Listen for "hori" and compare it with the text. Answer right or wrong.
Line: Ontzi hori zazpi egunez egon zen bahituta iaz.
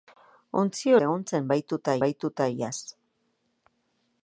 wrong